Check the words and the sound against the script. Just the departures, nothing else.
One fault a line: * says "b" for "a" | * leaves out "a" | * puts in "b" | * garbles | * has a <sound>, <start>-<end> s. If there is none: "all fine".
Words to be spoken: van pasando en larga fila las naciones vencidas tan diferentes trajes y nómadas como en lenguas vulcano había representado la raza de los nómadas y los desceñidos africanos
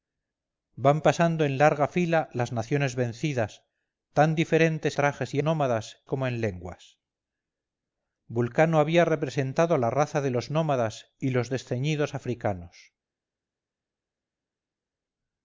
all fine